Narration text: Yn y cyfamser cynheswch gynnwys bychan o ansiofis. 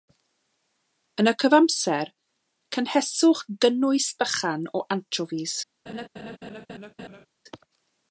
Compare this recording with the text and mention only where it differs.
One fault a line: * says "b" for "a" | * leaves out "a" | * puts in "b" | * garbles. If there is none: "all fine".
all fine